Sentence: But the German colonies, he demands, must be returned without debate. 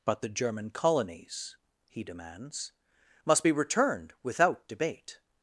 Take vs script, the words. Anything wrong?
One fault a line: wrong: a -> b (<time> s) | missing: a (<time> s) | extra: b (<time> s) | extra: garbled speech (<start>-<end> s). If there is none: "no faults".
no faults